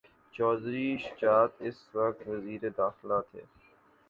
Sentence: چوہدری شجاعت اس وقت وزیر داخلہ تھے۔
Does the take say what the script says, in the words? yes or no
yes